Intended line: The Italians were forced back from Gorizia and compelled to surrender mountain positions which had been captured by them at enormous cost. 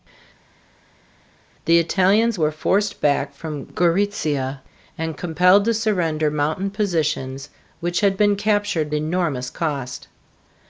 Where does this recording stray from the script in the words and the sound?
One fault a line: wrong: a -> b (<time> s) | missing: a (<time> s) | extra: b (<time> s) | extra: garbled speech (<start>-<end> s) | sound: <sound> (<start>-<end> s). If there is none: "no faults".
missing: by them at (8.9 s)